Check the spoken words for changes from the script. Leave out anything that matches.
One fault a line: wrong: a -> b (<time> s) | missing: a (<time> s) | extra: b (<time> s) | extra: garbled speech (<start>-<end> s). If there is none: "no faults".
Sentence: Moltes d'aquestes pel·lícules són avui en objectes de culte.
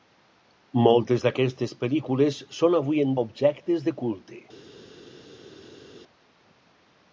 no faults